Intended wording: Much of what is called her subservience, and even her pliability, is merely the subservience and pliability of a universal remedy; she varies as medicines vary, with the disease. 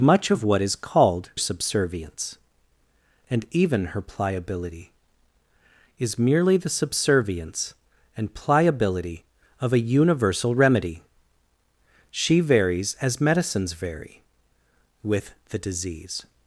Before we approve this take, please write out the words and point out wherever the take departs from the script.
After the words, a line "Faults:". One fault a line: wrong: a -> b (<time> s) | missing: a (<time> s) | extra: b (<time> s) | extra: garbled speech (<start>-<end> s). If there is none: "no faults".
Much of what is called subservience, and even her pliability, is merely the subservience and pliability of a universal remedy; she varies as medicines vary, with the disease.
Faults:
missing: her (1.3 s)